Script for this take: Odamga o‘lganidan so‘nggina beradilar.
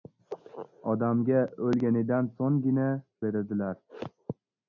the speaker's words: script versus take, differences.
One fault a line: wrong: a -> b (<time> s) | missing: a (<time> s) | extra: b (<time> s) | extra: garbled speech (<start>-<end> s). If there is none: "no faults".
no faults